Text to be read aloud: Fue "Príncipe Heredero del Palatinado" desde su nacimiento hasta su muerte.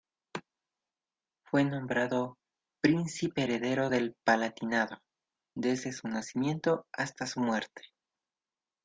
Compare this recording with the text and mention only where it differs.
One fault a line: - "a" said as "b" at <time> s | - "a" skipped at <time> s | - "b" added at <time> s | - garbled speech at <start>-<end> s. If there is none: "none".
- "nombrado" added at 1.6 s